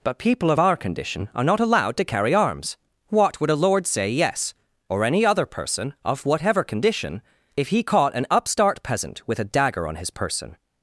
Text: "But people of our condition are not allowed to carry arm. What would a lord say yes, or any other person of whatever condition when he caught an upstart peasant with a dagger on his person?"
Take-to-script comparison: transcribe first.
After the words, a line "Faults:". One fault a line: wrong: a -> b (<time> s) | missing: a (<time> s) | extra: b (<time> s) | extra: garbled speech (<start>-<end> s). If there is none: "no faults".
"But people of our condition are not allowed to carry arms. What would a lord say yes, or any other person of whatever condition if he caught an upstart peasant with a dagger on his person?"
Faults:
wrong: arm -> arms (2.3 s)
wrong: when -> if (7.6 s)